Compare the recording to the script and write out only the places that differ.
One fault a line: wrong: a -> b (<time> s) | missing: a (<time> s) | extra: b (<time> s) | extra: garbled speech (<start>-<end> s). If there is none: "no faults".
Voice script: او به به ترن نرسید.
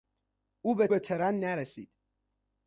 no faults